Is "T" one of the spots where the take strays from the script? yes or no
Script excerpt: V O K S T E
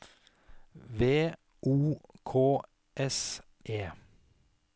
yes